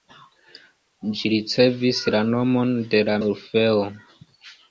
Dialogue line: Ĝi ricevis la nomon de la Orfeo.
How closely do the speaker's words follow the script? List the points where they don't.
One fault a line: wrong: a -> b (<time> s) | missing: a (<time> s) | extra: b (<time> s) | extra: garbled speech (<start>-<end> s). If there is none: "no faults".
no faults